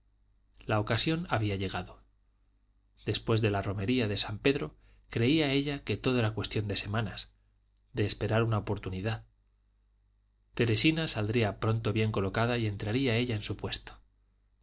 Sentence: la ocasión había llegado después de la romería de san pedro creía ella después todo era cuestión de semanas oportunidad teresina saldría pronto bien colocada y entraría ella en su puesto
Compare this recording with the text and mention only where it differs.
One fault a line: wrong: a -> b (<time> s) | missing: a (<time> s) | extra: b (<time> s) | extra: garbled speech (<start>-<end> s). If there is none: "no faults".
wrong: después -> que (5.8 s)
extra: de esperar una (7.9 s)